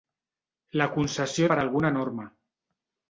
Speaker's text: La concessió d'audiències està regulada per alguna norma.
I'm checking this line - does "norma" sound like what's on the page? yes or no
yes